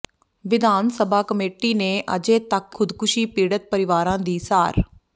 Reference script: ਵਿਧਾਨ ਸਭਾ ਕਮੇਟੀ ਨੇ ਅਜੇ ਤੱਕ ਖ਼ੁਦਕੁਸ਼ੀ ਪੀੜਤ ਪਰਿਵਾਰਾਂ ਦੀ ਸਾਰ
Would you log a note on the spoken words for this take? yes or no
no